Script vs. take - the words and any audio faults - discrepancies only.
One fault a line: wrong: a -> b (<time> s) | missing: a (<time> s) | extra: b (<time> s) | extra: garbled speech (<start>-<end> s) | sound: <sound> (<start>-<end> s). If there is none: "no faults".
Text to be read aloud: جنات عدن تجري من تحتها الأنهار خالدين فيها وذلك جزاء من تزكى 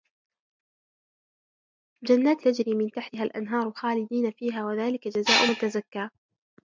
missing: عدن (2.5 s)